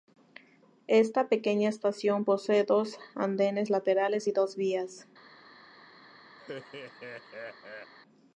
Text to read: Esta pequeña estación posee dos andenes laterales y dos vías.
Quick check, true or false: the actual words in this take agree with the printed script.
true